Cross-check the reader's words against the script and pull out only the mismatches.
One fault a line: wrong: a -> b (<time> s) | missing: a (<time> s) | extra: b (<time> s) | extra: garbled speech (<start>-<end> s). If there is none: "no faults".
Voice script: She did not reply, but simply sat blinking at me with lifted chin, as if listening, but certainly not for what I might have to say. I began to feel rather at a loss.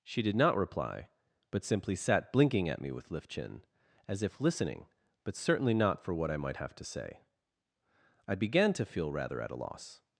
wrong: lifted -> lift (3.1 s)